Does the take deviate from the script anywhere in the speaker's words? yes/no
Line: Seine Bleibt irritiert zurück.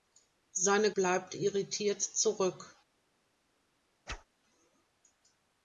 no